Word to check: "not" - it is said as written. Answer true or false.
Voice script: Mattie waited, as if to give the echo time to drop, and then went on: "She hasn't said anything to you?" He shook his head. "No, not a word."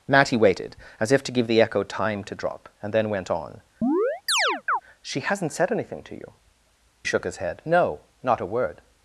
true